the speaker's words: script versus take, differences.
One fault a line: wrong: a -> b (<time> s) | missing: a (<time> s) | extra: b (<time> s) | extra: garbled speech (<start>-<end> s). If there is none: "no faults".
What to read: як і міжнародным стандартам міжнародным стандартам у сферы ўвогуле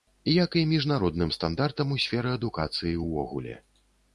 missing: міжнародным стандартам (1.9 s)
extra: адукацыі (2.4 s)